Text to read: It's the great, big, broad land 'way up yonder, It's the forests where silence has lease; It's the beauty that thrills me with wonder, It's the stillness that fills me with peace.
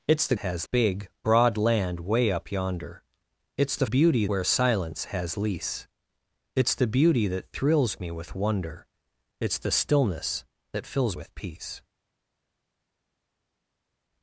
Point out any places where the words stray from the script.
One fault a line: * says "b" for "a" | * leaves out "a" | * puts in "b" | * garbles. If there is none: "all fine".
* says "has" for "great"
* says "beauty" for "forests"
* leaves out "me"